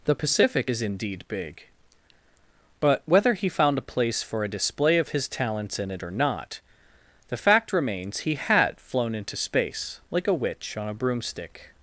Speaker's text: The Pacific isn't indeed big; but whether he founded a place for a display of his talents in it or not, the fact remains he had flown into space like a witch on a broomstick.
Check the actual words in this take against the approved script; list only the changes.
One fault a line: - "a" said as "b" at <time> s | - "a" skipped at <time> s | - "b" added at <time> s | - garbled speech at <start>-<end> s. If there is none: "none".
- "isn't" said as "is" at 0.7 s
- "founded" said as "found" at 3.5 s